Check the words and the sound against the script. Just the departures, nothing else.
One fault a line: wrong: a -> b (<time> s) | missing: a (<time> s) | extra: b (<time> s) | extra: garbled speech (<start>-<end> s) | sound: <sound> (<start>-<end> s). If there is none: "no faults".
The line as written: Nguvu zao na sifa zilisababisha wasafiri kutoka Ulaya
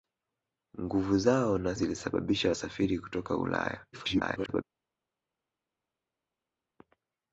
missing: sifa (1.8 s)
extra: garbled speech (3.9-4.6 s)